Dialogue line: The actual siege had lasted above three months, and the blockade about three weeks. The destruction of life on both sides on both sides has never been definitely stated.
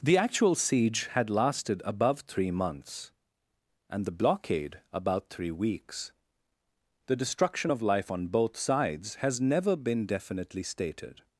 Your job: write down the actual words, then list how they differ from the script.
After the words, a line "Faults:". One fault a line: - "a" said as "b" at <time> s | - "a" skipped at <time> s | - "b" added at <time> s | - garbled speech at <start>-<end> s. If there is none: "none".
The actual siege had lasted above three months, and the blockade about three weeks. The destruction of life on both sides has never been definitely stated.
Faults:
- "on both sides" skipped at 9.2 s